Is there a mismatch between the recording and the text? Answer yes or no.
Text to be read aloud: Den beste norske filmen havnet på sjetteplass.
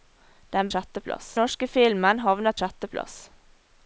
yes